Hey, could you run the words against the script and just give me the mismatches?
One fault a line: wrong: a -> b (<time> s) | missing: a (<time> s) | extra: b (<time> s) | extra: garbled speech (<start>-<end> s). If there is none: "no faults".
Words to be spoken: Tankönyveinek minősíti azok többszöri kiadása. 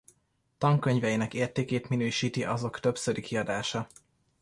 extra: értékét (1.3 s)